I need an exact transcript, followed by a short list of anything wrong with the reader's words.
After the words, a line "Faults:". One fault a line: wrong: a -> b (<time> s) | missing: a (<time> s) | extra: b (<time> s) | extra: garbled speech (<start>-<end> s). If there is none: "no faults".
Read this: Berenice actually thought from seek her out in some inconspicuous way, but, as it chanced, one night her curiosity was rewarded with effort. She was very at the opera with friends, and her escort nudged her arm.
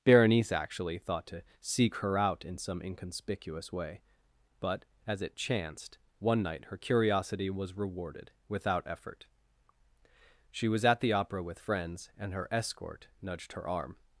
Berenice actually thought to seek her out in some inconspicuous way, but, as it chanced, one night her curiosity was rewarded without effort. She was at the opera with friends, and her escort nudged her arm.
Faults:
wrong: from -> to (1.3 s)
wrong: with -> without (8.5 s)
missing: very (10.8 s)